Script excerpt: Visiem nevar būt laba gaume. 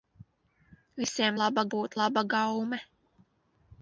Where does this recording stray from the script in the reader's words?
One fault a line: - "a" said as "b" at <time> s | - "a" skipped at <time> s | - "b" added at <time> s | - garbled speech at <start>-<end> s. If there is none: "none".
- "nevar" said as "laba" at 1.4 s